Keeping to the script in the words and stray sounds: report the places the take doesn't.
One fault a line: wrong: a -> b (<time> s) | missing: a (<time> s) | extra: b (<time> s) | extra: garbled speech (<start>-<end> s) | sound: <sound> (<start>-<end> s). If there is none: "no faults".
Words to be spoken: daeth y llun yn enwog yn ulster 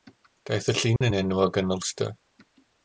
sound: dropout (1.0-1.0 s)